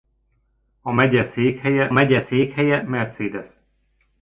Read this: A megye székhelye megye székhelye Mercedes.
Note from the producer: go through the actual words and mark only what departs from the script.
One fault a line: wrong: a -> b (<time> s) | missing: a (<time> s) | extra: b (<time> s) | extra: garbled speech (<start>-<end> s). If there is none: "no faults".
no faults